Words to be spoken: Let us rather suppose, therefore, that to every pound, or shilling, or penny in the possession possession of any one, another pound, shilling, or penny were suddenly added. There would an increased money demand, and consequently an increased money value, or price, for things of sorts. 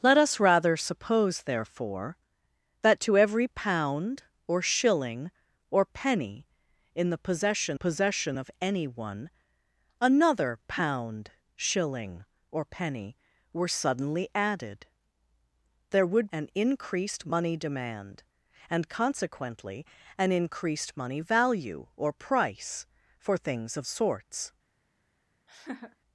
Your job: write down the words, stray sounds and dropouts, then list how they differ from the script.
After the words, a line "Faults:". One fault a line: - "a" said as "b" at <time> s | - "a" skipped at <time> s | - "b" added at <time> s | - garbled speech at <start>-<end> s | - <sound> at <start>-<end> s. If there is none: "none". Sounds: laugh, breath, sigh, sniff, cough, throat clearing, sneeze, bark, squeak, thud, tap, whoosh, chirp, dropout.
Let us rather suppose, therefore, that to every pound, or shilling, or penny in the possession possession of any one, another pound, shilling, or penny were suddenly added. There would an increased money demand, and consequently an increased money value, or price, for things of sorts.
Faults:
- laugh at 25.5-26.0 s